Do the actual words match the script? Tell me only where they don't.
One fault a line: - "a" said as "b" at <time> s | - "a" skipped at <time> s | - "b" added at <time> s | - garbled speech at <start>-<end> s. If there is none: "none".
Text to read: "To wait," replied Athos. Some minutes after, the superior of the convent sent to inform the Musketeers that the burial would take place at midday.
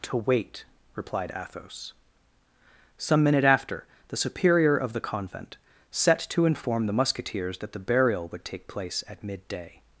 - "minutes" said as "minute" at 3.2 s
- "sent" said as "set" at 5.9 s